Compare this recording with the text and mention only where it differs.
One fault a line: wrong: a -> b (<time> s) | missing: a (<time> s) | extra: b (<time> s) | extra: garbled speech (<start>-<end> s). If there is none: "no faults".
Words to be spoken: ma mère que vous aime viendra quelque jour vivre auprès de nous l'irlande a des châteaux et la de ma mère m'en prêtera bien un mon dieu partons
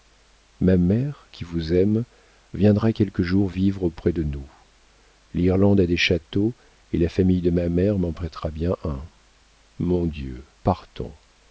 wrong: que -> qui (1.3 s)
extra: famille (7.1 s)